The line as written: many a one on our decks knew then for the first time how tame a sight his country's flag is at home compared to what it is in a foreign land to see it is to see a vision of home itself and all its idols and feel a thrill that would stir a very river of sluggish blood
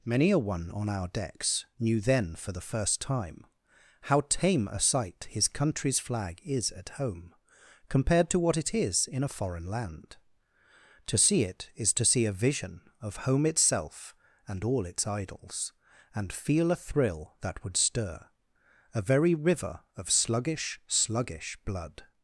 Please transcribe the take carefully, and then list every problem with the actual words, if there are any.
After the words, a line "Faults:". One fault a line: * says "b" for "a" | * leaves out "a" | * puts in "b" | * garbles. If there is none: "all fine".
many a one on our decks knew then for the first time how tame a sight his country's flag is at home compared to what it is in a foreign land to see it is to see a vision of home itself and all its idols and feel a thrill that would stir a very river of sluggish sluggish blood
Faults:
* puts in "sluggish"